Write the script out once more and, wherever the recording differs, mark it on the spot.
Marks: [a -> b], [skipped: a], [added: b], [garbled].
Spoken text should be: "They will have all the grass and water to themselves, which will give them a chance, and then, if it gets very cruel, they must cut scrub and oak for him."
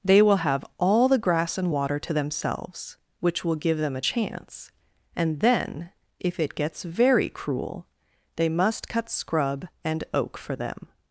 "They will have all the grass and water to themselves, which will give them a chance, and then, if it gets very cruel, they must cut scrub and oak for [him." -> them]